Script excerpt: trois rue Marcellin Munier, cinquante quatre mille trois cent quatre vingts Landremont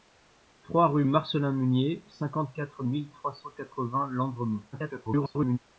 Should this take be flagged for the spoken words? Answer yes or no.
yes